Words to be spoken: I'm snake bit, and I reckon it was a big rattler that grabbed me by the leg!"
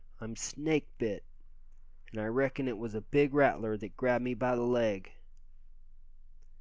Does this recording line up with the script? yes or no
yes